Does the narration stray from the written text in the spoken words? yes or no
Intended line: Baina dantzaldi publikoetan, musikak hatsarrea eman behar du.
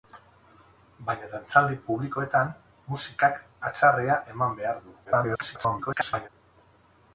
yes